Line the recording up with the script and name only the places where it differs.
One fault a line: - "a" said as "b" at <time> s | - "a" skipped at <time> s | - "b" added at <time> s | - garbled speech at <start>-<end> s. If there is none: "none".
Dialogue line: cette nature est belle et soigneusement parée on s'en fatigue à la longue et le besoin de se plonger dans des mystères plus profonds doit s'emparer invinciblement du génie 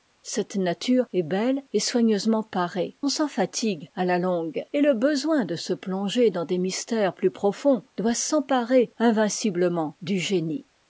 none